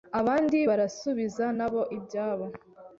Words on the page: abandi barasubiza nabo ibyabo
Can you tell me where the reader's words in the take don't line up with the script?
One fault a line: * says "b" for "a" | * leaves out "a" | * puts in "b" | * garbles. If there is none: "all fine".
all fine